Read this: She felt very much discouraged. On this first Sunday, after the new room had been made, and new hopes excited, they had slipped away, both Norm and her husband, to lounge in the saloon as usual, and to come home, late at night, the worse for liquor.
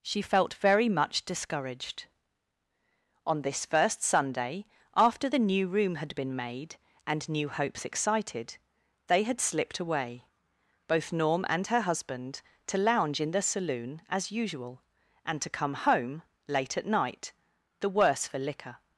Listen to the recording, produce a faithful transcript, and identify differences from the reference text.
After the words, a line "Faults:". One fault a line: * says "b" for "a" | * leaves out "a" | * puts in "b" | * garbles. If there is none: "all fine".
She felt very much discouraged. On this first Sunday, after the new room had been made, and new hopes excited, they had slipped away, both Norm and her husband, to lounge in the saloon as usual, and to come home, late at night, the worse for liquor.
Faults:
all fine